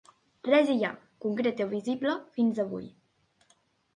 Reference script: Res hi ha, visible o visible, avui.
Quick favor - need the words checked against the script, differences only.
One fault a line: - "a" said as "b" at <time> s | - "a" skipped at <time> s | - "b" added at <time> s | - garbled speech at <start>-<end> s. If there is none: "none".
- "visible" said as "concret" at 1.2 s
- "fins" added at 2.4 s